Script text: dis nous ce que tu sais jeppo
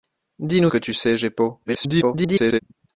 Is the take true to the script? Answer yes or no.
no